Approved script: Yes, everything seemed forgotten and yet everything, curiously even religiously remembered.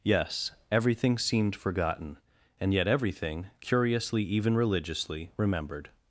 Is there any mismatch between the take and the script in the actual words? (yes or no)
no